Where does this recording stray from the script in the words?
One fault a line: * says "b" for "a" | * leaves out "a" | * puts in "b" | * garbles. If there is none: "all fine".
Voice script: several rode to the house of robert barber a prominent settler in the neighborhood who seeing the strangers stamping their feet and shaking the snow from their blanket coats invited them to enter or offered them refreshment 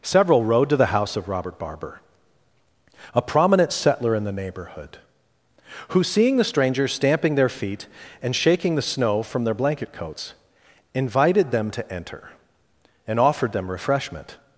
* says "and" for "or"